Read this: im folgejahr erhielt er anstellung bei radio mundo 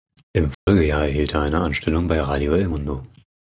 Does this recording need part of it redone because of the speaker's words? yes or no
yes